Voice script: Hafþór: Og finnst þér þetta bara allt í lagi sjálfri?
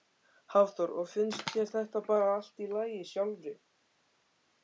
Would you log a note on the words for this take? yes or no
no